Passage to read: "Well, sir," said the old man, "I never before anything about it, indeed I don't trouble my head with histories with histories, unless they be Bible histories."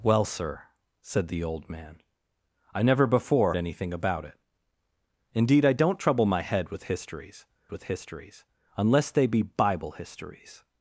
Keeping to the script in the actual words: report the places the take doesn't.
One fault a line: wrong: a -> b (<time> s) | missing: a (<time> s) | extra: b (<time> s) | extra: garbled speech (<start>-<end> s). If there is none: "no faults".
no faults